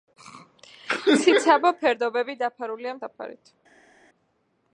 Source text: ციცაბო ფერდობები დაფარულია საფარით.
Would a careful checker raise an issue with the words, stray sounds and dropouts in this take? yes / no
no